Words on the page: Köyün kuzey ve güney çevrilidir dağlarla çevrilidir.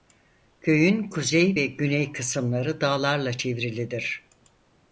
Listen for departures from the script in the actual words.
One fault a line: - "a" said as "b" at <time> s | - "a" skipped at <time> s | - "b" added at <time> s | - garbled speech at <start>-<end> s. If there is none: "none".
- "çevrilidir" said as "kısımları" at 2.1 s